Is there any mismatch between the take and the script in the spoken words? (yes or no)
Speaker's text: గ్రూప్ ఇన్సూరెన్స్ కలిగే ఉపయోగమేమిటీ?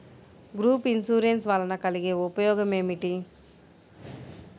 yes